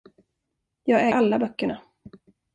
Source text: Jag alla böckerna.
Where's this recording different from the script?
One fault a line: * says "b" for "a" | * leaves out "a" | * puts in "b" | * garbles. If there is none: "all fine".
all fine